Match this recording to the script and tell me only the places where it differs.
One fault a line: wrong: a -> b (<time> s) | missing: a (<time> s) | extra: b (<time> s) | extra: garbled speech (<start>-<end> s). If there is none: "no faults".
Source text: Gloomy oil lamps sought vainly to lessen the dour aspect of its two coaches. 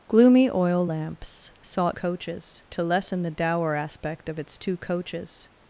wrong: vainly -> coaches (1.9 s)